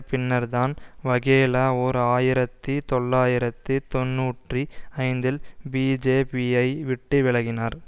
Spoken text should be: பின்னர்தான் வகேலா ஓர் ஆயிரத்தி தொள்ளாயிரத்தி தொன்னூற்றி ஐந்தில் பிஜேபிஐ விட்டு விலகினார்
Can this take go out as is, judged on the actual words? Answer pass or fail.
pass